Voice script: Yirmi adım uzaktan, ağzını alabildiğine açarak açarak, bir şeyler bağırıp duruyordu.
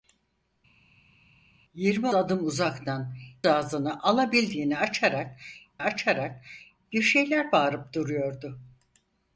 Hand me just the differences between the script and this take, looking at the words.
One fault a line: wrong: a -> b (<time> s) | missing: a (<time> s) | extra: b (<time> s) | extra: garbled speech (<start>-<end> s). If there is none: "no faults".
no faults